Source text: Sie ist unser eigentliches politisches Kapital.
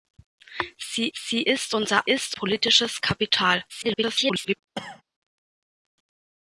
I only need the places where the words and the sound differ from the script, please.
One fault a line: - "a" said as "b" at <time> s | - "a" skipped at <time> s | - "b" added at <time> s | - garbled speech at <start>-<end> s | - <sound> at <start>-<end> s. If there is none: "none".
- "sie" added at 1.1 s
- "eigentliches" said as "ist" at 2.0 s
- garbled speech at 3.7-4.6 s
- cough at 4.8-5.0 s